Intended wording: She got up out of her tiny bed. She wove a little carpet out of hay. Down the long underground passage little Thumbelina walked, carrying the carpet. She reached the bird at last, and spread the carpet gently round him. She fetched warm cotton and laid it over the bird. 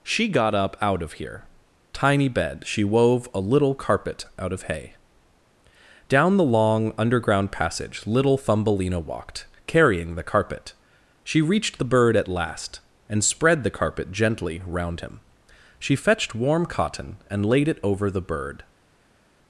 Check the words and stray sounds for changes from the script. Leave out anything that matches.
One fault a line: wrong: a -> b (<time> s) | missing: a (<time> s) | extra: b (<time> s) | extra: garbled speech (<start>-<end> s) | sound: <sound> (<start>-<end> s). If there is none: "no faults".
wrong: her -> here (1.1 s)